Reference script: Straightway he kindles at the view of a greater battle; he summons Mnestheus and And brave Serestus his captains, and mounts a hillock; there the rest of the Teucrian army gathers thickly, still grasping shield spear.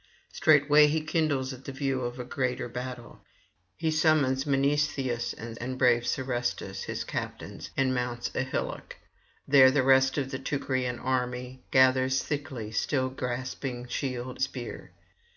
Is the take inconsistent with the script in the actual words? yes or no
no